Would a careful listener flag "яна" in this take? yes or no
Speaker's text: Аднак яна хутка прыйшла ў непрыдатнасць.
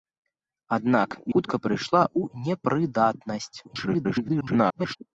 yes